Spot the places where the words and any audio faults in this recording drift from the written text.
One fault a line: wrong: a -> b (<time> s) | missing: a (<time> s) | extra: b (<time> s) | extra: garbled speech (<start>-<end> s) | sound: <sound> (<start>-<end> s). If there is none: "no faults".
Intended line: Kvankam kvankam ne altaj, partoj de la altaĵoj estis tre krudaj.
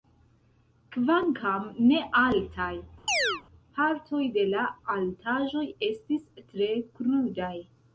missing: kvankam (1.6 s)
sound: chirp (3.1-3.4 s)